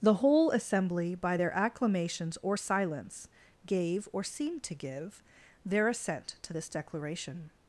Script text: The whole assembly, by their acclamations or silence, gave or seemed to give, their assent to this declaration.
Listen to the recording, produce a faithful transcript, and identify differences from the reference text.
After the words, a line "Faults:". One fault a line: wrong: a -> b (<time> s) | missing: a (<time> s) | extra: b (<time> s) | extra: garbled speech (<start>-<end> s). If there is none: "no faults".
The whole assembly, by their acclamations or silence, gave or seemed to give, their assent to this declaration.
Faults:
no faults